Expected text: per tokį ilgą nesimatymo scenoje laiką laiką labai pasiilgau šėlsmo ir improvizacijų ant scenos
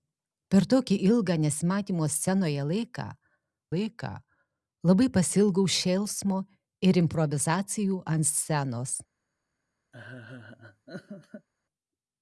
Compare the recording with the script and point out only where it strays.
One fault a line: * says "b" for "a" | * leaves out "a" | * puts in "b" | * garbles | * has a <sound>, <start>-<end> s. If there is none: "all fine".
* has a laugh, 9.9-11.5 s